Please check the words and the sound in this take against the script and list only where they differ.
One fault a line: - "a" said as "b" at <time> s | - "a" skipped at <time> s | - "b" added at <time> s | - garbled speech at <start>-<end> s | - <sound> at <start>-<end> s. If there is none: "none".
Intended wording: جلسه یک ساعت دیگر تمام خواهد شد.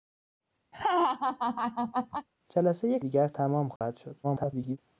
- laugh at 0.7-2.3 s
- "ساعت" skipped at 3.0 s
- dropout at 3.8-3.8 s
- garbled speech at 4.2-4.8 s